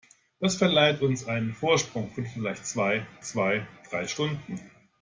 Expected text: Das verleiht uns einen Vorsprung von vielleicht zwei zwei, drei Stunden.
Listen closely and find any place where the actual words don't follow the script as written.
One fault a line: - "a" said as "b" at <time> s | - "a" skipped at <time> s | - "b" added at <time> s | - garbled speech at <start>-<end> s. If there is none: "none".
none